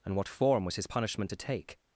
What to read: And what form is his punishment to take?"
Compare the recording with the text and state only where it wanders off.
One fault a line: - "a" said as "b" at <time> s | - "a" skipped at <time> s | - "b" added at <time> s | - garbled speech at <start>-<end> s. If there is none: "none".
- "is" said as "was" at 0.7 s